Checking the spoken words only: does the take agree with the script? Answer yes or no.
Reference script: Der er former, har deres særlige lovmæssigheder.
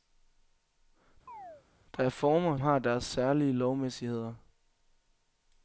yes